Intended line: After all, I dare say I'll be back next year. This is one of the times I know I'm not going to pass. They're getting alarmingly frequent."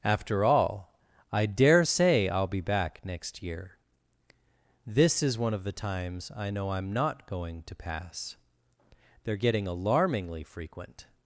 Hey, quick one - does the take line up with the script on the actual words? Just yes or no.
yes